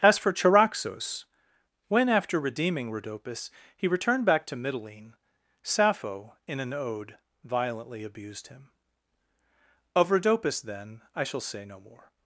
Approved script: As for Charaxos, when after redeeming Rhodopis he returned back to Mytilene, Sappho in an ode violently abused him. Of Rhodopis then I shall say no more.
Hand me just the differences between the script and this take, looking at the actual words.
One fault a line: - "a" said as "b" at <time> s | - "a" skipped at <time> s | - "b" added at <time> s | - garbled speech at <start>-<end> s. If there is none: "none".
none